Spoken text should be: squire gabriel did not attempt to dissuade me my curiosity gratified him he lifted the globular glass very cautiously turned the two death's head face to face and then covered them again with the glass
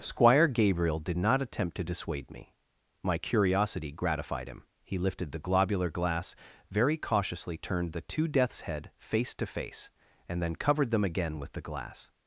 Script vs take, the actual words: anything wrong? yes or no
no